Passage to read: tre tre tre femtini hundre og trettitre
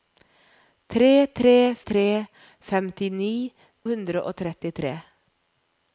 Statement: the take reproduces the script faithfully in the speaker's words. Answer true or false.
true